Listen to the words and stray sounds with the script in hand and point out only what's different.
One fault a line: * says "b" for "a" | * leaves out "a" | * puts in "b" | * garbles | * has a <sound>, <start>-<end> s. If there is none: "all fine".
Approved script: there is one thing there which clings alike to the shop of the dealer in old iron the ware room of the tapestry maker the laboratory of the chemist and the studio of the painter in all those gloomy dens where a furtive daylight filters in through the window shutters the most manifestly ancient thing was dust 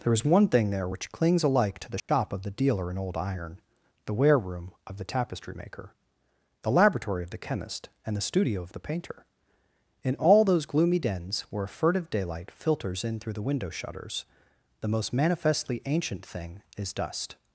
* has a dropout, 2.0-2.1 s
* says "is" for "was"